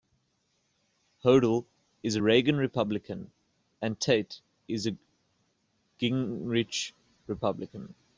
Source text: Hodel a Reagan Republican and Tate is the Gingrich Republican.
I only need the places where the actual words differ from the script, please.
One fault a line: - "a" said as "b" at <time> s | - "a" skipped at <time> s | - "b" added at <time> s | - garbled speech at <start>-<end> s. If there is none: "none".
- "is" added at 2.0 s
- "the" said as "a" at 4.9 s